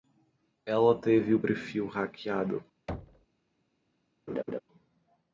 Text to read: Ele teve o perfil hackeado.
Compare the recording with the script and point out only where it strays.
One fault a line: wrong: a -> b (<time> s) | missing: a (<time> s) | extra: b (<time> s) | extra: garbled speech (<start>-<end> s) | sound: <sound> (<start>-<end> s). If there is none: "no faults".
wrong: Ele -> Ela (0.7 s)
sound: thud (2.9-3.3 s)
sound: laugh (4.3-4.6 s)